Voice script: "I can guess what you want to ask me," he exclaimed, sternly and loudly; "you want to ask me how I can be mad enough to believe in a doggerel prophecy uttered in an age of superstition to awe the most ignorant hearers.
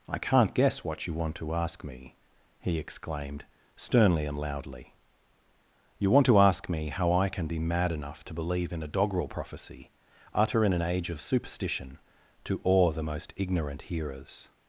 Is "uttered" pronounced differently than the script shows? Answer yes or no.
yes